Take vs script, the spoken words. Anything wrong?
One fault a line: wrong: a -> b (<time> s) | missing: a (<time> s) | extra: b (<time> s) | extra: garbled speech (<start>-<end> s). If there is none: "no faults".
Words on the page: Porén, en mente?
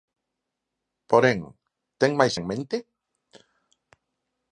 extra: ten máis (2.0 s)